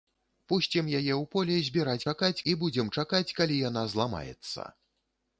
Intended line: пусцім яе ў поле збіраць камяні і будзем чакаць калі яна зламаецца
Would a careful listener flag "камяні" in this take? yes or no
yes